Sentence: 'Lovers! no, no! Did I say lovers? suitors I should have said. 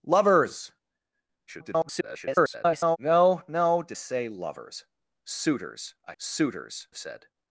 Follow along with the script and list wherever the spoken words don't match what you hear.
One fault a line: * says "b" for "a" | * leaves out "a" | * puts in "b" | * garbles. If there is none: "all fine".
* garbles
* leaves out "I"
* says "suitors" for "should"